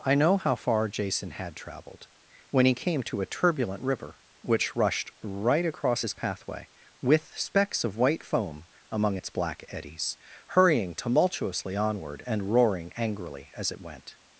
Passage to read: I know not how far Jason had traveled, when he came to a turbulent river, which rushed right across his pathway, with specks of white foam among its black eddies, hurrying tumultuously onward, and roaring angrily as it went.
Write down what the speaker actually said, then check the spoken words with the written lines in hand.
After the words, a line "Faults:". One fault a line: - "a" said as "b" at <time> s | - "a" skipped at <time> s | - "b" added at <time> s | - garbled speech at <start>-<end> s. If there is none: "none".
I know how far Jason had traveled, when he came to a turbulent river, which rushed right across his pathway, with specks of white foam among its black eddies, hurrying tumultuously onward, and roaring angrily as it went.
Faults:
- "not" skipped at 0.4 s